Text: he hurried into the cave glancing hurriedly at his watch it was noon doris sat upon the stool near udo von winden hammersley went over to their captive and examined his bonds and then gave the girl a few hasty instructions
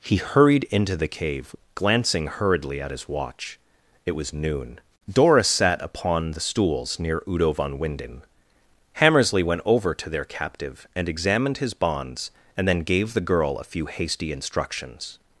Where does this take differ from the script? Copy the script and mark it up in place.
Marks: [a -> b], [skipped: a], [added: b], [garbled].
he hurried into the cave glancing hurriedly at his watch it was noon doris sat upon the [stool -> stools] near udo von winden hammersley went over to their captive and examined his bonds and then gave the girl a few hasty instructions